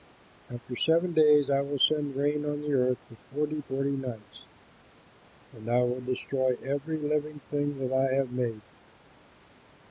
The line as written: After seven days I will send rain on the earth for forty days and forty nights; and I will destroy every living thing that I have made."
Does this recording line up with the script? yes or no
no